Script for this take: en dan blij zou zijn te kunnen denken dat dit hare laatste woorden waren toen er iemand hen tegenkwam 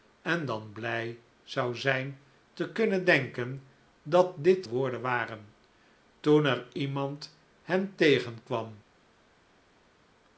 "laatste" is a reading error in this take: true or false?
true